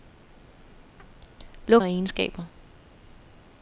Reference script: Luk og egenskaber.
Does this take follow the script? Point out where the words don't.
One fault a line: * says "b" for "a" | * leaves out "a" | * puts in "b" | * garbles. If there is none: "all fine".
all fine